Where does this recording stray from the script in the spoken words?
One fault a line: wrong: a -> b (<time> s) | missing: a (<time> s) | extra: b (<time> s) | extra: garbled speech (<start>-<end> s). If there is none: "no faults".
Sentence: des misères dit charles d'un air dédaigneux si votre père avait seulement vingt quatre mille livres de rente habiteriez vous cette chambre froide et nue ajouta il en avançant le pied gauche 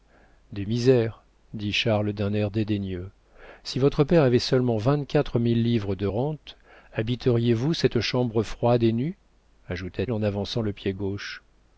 no faults